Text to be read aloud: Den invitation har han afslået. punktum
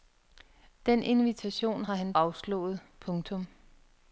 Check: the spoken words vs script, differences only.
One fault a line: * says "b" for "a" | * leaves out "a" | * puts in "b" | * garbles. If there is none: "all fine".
all fine